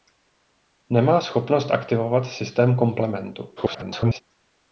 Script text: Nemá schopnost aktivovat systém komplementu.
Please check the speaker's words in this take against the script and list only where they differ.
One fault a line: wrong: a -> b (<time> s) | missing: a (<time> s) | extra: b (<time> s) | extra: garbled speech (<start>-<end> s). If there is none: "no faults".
extra: garbled speech (3.6-4.2 s)